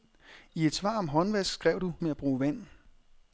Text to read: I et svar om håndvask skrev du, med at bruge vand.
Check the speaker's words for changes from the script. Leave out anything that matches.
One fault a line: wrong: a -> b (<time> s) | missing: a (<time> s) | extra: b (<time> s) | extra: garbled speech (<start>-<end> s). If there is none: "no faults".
no faults